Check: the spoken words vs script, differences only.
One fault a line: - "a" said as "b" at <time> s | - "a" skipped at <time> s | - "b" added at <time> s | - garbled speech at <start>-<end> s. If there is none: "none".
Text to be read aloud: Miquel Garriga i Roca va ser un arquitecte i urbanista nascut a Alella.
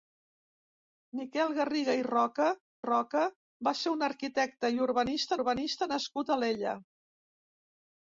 - "Roca" added at 2.8 s
- "urbanista" added at 5.4 s